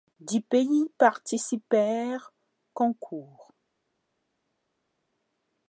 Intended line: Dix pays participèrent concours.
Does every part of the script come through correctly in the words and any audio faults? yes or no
yes